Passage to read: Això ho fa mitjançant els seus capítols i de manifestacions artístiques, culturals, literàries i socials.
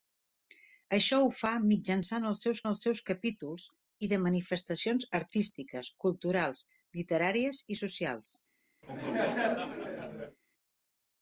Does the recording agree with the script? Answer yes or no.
no